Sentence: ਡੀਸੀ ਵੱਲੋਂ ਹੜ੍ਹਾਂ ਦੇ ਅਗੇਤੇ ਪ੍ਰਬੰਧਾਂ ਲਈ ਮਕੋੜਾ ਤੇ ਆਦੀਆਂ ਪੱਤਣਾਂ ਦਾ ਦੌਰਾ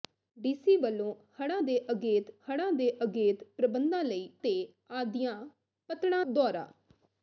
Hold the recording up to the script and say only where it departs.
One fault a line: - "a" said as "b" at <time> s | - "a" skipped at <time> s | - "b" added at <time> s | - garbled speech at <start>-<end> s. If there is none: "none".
- "ਹੜ੍ਹਾਂ ਦੇ ਅਗੇਤੇ" added at 2.5 s
- "ਮਕੋੜਾ" skipped at 4.3 s
- "ਦਾ" skipped at 6.2 s